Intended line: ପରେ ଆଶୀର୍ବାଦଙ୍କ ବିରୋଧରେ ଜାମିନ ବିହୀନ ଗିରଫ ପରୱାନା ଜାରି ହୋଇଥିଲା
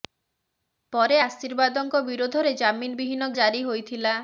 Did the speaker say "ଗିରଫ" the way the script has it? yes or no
no